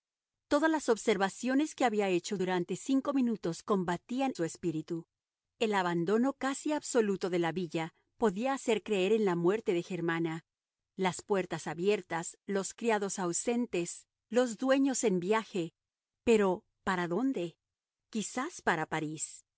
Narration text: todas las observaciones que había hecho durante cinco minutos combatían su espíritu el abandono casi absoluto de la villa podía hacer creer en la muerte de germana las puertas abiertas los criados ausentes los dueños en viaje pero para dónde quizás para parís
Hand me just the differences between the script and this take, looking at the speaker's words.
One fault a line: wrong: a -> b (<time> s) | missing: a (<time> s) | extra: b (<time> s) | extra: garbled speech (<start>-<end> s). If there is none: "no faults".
no faults